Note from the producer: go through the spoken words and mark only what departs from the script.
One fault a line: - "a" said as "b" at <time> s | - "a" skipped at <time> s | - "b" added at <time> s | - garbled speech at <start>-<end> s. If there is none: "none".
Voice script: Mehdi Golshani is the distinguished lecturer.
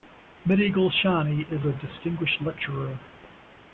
- "the" said as "a" at 1.7 s